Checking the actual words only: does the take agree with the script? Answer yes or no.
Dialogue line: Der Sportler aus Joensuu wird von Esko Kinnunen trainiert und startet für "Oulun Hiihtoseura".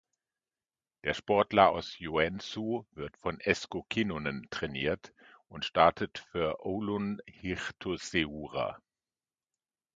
yes